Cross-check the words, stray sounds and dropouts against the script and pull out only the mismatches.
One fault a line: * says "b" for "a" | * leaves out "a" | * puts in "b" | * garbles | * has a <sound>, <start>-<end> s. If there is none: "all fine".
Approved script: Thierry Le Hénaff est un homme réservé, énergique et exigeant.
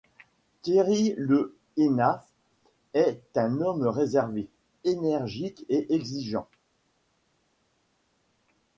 all fine